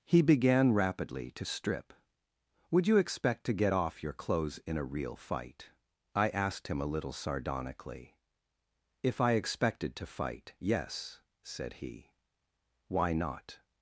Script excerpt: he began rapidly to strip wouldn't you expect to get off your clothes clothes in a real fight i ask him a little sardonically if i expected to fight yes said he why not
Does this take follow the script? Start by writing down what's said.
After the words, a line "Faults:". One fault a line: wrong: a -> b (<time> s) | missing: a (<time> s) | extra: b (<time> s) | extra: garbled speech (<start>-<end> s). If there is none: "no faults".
he began rapidly to strip would you expect to get off your clothes in a real fight i asked him a little sardonically if i expected to fight yes said he why not
Faults:
wrong: wouldn't -> would (2.7 s)
missing: clothes (4.6 s)
wrong: ask -> asked (6.3 s)